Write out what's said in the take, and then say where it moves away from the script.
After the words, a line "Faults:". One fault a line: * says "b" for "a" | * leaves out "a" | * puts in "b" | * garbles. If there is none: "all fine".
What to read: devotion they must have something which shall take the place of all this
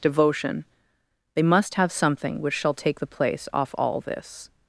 devotion they must have something which shall take the place off all this
Faults:
* says "off" for "of"